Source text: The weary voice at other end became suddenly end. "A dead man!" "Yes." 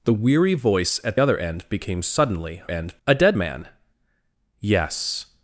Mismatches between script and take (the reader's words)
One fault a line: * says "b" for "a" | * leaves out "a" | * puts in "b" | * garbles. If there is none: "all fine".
all fine